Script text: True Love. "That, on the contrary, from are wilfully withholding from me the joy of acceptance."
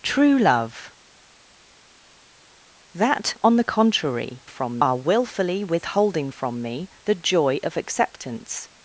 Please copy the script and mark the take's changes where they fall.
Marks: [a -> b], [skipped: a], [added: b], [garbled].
True Love. "That, on the contrary, from are wilfully withholding from me the joy of acceptance."